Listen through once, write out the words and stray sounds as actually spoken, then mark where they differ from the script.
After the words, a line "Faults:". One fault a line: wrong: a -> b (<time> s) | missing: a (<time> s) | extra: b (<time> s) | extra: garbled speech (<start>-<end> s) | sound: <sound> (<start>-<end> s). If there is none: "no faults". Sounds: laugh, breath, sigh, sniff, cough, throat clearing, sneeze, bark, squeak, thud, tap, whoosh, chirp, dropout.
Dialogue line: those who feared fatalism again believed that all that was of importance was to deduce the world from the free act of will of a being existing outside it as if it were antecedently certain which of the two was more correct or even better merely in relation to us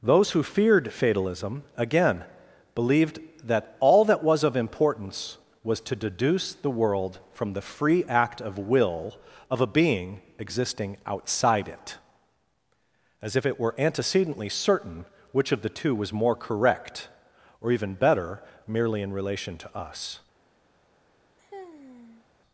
those who feared fatalism again believed that all that was of importance was to deduce the world from the free act of will of a being existing outside it as if it were antecedently certain which of the two was more correct or even better merely in relation to us
Faults:
sound: sigh (21.4-22.3 s)